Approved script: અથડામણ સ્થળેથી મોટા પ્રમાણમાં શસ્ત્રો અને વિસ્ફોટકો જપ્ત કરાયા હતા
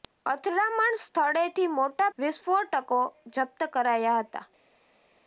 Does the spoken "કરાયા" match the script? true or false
true